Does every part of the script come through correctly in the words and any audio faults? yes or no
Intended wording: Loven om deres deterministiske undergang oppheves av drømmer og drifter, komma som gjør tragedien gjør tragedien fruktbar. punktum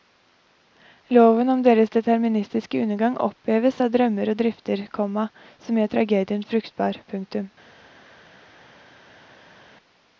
no